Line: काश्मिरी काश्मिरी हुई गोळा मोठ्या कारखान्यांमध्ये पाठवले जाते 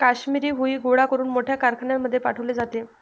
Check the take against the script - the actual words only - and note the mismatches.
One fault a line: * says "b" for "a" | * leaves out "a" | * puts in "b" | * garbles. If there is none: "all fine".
* leaves out "काश्मिरी"
* puts in "करून"